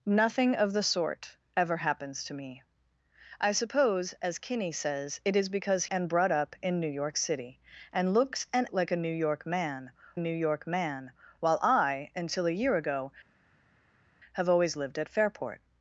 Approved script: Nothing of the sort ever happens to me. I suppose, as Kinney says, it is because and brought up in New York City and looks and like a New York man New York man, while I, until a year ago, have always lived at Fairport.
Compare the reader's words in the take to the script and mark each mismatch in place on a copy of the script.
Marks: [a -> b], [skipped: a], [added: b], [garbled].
Nothing of the sort ever happens to me. I suppose, as Kinney says, it is because and brought up in New York City and looks and like a New York man New York man, while I, until a year ago, have always lived at Fairport.